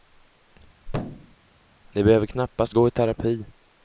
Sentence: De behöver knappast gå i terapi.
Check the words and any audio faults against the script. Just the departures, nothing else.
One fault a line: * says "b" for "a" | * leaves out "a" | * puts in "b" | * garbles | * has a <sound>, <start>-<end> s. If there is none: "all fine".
* has a thud, 0.9-1.4 s